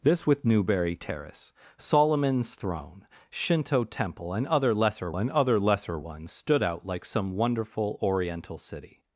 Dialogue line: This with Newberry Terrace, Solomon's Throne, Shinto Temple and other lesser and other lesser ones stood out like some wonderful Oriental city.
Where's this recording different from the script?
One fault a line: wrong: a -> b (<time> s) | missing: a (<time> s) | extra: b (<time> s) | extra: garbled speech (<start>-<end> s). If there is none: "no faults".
no faults